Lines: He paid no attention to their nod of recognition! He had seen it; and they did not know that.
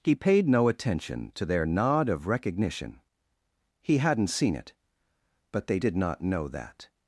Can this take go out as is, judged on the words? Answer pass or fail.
fail